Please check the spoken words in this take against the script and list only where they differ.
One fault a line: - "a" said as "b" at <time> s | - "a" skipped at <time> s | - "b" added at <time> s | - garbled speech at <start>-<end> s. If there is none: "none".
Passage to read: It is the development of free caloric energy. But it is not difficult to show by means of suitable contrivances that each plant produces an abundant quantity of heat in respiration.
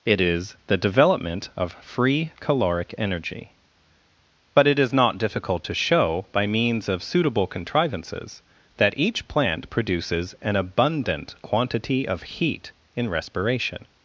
none